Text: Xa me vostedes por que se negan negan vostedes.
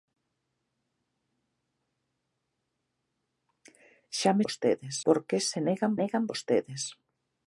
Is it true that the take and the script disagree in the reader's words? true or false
false